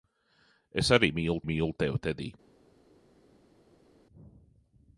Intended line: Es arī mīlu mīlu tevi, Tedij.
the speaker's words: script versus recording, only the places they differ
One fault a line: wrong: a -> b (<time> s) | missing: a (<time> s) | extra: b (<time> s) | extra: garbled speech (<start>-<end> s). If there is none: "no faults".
no faults